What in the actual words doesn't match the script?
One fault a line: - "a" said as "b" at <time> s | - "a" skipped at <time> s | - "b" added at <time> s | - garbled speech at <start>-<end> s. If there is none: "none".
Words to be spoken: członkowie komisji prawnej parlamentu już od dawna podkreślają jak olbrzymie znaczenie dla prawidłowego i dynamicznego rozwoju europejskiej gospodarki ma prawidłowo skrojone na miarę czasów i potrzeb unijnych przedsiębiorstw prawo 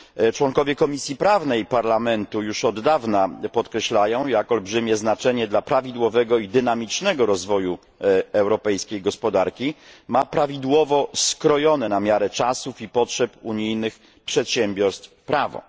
none